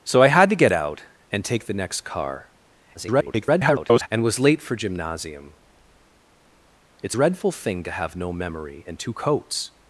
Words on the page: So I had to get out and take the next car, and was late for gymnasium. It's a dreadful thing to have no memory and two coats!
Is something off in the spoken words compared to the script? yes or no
yes